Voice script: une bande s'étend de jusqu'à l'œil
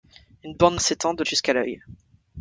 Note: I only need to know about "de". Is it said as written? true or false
true